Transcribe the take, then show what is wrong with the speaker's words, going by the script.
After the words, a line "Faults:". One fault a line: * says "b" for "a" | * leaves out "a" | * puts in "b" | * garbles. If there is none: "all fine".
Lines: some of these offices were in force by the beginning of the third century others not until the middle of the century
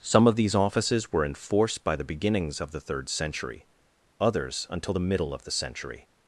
some of these offices were in force by the beginnings of the third century others until the middle of the century
Faults:
* says "beginnings" for "beginning"
* leaves out "not"